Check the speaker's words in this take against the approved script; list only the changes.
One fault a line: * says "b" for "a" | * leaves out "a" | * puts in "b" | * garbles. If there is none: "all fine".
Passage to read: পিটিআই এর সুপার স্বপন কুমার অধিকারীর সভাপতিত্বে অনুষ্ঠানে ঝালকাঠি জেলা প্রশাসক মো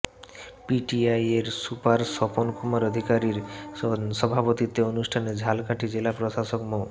all fine